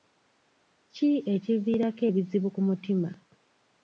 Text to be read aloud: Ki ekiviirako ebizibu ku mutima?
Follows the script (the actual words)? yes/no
yes